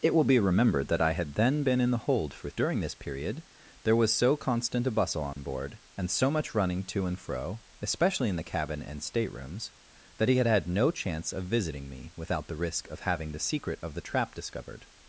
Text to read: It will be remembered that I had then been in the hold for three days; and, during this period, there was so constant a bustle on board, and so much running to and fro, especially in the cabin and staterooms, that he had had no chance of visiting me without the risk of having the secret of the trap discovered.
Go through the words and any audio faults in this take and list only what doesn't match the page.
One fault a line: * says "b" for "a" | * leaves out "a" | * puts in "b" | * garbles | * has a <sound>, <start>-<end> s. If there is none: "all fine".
* leaves out "three days and"
* has a dropout, 5.3-5.4 s